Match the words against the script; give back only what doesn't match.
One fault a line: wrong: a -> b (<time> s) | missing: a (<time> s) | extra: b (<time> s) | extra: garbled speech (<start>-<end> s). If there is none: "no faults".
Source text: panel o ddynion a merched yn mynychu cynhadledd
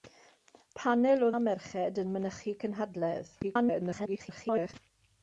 missing: ddynion (1.3 s)
extra: garbled speech (3.4-4.7 s)